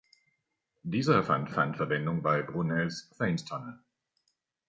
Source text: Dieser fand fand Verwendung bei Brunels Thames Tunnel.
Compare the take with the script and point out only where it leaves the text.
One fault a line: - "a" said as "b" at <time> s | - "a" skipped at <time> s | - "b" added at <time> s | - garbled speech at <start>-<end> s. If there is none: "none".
none